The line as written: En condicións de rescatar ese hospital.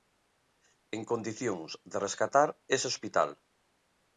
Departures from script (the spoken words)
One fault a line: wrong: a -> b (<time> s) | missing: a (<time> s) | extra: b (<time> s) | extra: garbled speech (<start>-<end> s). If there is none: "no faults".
no faults